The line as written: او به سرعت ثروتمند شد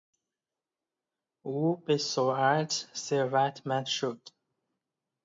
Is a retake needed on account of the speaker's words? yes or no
no